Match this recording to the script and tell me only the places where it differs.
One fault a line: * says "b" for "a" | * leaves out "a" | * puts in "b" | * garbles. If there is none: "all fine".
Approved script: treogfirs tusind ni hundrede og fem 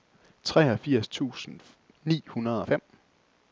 all fine